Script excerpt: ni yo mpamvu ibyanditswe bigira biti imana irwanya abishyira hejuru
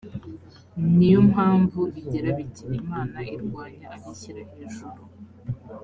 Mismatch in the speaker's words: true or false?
true